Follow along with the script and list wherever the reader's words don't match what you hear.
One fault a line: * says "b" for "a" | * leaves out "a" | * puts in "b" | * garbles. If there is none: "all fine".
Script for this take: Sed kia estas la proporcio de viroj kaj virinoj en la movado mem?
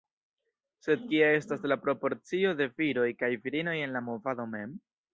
all fine